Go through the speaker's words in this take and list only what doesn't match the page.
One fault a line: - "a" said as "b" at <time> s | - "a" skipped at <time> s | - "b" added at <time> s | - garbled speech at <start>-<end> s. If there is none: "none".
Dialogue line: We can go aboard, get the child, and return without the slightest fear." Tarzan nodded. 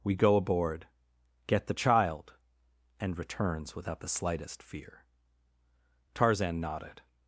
- "can" skipped at 0.1 s
- "return" said as "returns" at 3.2 s